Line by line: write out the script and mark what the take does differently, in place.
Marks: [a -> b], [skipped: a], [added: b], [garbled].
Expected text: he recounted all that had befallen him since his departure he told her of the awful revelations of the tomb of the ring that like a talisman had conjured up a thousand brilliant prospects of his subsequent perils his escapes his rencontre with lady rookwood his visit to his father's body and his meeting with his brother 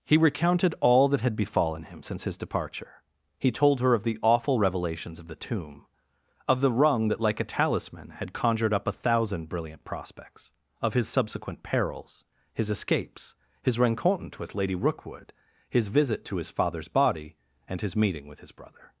he recounted all that had befallen him since his departure he told her of the awful revelations of the tomb of the [ring -> rung] that like a talisman had conjured up a thousand brilliant prospects of his subsequent perils his escapes his rencontre with lady rookwood his visit to his father's body and his meeting with his brother